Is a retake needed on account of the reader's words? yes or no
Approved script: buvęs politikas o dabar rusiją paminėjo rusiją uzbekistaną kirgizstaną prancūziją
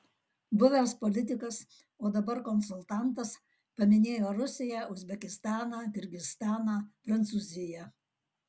yes